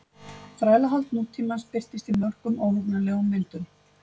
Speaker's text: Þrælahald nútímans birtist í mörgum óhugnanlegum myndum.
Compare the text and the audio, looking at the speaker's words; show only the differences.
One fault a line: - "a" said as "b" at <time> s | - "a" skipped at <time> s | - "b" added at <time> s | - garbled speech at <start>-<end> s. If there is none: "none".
none